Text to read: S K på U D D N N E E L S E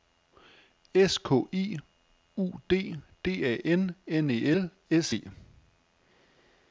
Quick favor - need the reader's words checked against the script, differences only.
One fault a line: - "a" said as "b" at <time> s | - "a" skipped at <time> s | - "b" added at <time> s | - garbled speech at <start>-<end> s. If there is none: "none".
- "på" said as "I" at 1.5 s
- "A" added at 3.5 s
- "E" skipped at 4.5 s